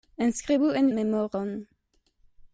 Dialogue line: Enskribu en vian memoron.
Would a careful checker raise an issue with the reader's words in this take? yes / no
yes